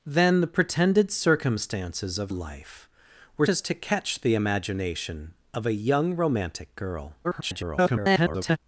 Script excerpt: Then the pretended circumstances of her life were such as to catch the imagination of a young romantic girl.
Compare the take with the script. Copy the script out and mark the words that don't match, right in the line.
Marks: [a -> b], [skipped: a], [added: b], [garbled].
Then the pretended circumstances of [skipped: her] life were [skipped: such] as to catch the imagination of a young romantic girl. [garbled]